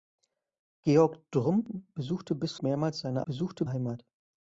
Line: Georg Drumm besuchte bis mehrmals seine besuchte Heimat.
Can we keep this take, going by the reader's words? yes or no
yes